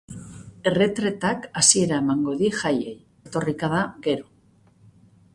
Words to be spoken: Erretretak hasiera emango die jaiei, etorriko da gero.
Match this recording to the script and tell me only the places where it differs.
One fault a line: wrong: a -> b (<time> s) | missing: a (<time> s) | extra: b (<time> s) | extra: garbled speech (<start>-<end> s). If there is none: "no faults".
no faults